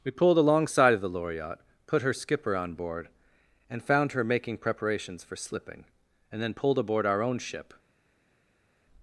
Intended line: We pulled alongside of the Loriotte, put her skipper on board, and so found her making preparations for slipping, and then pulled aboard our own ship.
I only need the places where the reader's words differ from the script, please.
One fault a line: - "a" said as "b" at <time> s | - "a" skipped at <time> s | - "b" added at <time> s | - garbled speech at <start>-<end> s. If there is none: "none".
- "so" skipped at 3.8 s